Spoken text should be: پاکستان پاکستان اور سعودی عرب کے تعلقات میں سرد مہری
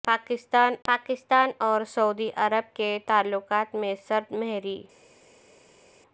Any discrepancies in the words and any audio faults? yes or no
no